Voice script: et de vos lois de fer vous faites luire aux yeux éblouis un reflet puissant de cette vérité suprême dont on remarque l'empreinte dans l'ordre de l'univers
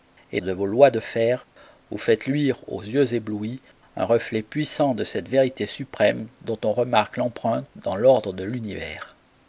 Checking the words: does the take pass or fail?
pass